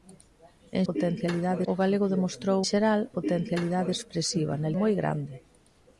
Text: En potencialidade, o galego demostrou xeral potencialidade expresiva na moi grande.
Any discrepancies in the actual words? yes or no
no